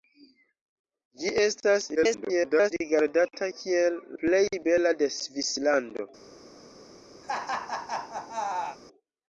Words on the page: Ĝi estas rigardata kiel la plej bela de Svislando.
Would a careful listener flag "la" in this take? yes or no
yes